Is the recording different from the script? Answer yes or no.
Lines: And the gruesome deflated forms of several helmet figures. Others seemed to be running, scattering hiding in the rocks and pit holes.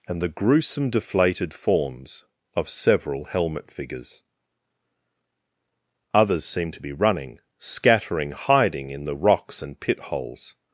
no